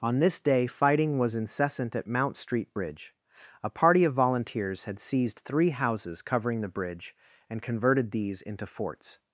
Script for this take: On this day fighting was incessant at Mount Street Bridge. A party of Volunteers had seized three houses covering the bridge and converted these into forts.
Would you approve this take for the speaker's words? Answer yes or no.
yes